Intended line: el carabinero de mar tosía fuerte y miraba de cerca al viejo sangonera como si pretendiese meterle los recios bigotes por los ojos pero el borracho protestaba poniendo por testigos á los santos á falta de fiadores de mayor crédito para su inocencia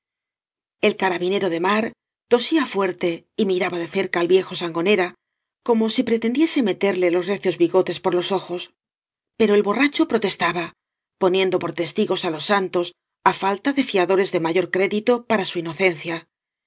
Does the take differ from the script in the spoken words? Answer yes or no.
no